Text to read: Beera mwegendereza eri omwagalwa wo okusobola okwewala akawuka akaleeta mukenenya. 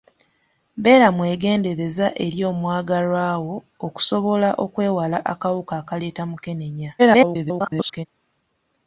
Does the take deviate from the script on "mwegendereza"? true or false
false